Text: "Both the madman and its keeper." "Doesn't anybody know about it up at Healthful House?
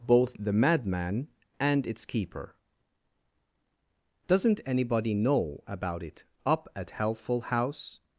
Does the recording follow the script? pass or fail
pass